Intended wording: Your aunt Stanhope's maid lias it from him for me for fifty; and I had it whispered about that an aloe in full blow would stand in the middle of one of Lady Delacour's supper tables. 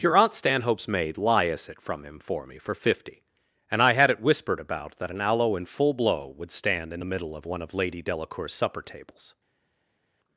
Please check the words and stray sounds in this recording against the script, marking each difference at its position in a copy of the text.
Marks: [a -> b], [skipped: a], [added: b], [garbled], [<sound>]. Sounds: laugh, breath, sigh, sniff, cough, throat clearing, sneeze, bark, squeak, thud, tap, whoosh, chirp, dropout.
Your aunt Stanhope's maid lias it from him for me for fifty; and I had it whispered about that an aloe in full blow would stand in the middle of one of Lady Delacour's supper tables.